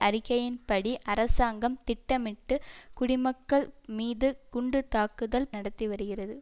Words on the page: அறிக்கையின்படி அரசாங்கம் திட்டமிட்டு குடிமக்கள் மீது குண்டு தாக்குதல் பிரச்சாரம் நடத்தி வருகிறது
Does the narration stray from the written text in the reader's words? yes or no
yes